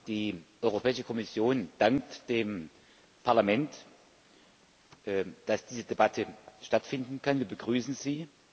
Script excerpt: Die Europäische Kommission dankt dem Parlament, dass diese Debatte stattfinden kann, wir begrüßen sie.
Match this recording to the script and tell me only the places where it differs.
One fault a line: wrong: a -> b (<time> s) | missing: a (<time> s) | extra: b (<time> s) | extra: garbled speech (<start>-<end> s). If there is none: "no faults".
no faults